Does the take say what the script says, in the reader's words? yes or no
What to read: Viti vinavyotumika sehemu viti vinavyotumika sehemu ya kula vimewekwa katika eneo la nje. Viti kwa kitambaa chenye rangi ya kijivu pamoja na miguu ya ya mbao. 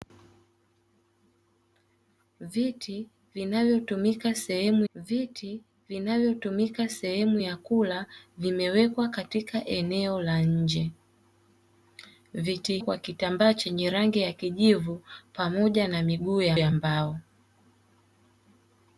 yes